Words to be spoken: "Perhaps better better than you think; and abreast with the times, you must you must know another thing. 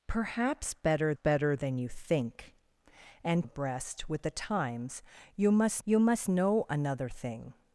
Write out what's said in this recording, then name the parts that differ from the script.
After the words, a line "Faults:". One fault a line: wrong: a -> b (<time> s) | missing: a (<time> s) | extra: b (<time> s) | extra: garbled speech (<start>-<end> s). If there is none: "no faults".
"Perhaps better better than you think; and abreast with the times, you must you must know another thing.
Faults:
no faults